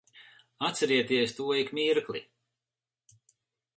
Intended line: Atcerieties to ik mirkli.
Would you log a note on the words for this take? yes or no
no